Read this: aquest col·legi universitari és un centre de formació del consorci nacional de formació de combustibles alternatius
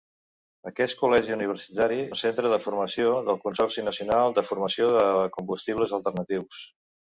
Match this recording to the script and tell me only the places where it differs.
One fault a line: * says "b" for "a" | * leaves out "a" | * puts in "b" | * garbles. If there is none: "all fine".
* leaves out "és"